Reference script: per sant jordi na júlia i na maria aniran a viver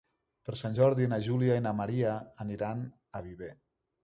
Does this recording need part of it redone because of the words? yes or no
no